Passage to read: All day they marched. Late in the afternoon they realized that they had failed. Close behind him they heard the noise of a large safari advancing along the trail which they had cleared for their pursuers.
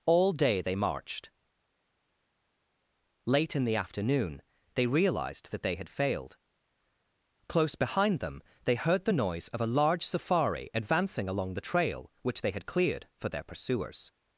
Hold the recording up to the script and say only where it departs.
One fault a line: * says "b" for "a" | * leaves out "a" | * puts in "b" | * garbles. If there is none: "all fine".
* says "them" for "him"